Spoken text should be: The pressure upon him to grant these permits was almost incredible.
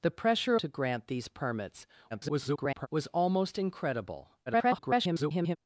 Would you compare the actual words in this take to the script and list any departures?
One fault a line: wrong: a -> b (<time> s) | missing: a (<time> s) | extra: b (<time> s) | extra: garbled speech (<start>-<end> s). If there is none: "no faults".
missing: upon him (0.6 s)
extra: garbled speech (2.1-2.9 s)
extra: garbled speech (4.5-5.6 s)